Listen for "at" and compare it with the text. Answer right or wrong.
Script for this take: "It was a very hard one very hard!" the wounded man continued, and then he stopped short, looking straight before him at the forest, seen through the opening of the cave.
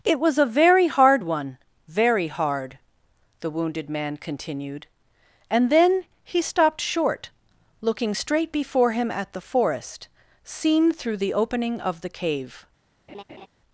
right